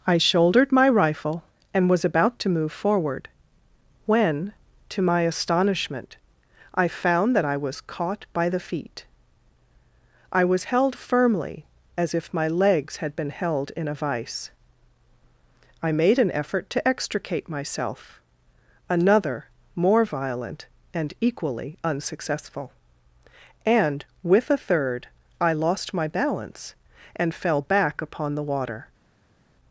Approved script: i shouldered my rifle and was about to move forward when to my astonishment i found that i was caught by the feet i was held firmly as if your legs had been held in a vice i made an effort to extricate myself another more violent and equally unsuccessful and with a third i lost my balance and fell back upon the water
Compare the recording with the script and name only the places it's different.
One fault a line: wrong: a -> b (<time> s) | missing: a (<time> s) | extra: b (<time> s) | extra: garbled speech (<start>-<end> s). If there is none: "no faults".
wrong: your -> my (12.3 s)